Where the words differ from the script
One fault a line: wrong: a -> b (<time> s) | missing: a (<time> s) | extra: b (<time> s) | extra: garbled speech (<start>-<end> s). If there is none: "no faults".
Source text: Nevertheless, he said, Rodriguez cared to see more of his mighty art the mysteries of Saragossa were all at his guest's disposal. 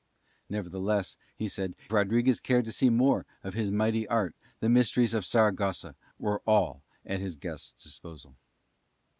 no faults